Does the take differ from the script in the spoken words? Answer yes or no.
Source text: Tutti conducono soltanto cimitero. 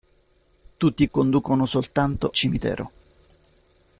no